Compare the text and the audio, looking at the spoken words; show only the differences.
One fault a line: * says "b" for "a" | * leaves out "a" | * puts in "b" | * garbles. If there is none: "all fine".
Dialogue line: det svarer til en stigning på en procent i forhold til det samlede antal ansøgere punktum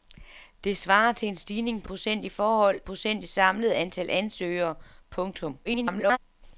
* leaves out "en"
* says "procent" for "til"
* garbles